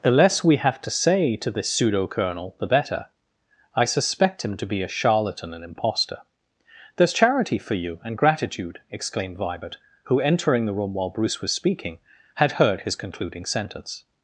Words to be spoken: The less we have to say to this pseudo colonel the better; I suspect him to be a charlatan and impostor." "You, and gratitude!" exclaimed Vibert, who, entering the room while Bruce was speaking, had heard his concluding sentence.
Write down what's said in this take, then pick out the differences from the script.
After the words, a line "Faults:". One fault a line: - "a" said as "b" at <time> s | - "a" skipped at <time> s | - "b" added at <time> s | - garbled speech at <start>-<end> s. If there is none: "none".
The less we have to say to this pseudo colonel the better; I suspect him to be a charlatan and impostor." "There's charity for you, and gratitude!" exclaimed Vibert, who, entering the room while Bruce was speaking, had heard his concluding sentence.
Faults:
- "There's charity for" added at 7.0 s